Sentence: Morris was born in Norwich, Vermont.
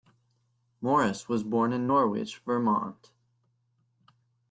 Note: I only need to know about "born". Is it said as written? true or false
true